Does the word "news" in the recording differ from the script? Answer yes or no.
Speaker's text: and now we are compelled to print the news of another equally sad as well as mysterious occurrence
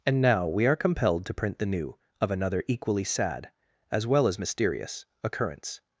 yes